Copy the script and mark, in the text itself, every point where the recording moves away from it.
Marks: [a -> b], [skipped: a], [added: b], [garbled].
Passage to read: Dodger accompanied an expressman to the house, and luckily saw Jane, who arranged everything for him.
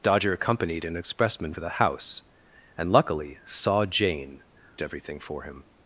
Dodger accompanied an expressman to the house, and luckily saw Jane, [skipped: who arranged] everything for him.